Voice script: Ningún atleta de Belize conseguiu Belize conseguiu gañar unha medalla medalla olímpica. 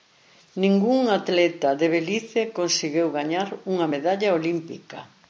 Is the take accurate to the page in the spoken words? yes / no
no